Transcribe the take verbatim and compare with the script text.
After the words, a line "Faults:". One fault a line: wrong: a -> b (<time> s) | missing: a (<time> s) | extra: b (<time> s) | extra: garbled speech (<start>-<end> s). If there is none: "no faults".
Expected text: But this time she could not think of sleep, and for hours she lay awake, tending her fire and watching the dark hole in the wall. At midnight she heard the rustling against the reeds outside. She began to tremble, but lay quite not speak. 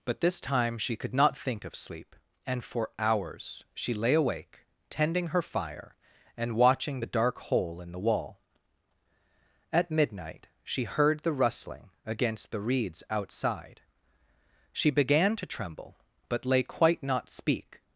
But this time she could not think of sleep, and for hours she lay awake, tending her fire and watching the dark hole in the wall. At midnight she heard the rustling against the reeds outside. She began to tremble, but lay quite not speak.
Faults:
no faults